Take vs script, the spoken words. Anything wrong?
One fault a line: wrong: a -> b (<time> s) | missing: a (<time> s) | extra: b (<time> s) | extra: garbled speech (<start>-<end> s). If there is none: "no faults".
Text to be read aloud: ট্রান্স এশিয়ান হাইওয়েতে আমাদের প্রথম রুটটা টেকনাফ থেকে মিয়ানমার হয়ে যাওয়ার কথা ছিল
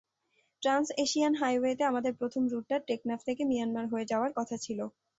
no faults